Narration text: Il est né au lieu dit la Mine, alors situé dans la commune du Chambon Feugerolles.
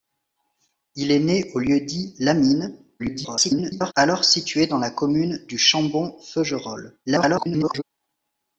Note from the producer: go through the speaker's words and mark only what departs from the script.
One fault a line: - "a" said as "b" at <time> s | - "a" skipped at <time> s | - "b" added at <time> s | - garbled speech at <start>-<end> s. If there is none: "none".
- garbled speech at 3.0-3.9 s
- garbled speech at 7.1-7.8 s